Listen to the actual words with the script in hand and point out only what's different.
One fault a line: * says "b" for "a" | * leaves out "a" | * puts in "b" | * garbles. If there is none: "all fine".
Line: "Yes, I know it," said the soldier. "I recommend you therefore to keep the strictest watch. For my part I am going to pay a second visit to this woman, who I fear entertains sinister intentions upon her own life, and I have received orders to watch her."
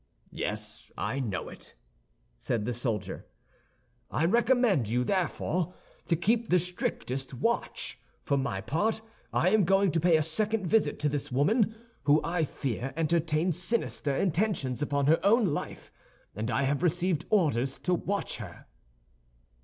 all fine